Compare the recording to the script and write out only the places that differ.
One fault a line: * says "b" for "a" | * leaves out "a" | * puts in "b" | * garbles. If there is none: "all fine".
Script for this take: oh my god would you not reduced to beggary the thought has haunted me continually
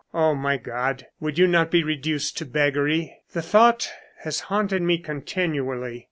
* puts in "be"